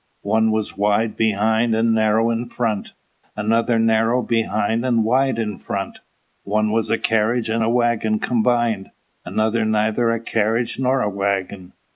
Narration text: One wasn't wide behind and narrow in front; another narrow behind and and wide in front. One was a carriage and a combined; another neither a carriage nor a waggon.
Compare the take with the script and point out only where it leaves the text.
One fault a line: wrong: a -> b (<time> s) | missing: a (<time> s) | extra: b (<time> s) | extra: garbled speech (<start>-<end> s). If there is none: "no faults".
wrong: wasn't -> was (0.5 s)
missing: and (5.0 s)
extra: waggon (7.7 s)